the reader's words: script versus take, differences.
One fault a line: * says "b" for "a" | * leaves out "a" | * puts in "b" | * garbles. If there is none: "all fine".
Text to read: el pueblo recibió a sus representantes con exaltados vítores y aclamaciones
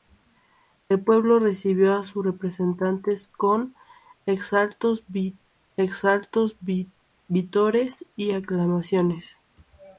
* puts in "exaltados"